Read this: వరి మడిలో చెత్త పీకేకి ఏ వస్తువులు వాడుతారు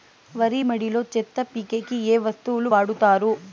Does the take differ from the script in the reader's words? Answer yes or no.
no